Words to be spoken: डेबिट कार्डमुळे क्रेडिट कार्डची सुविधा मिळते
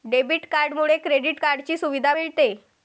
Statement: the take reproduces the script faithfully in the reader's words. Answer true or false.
true